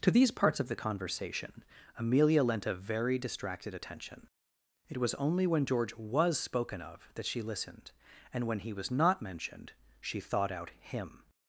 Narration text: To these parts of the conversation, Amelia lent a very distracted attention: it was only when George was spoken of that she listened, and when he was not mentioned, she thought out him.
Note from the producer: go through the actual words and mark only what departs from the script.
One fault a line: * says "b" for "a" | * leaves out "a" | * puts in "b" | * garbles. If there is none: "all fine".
all fine